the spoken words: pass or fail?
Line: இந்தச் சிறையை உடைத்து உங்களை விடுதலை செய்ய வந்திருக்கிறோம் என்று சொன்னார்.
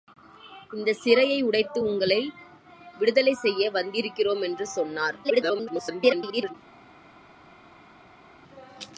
fail